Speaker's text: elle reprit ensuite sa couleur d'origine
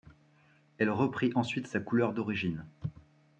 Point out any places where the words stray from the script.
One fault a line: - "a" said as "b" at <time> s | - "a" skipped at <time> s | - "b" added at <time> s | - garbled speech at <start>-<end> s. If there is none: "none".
none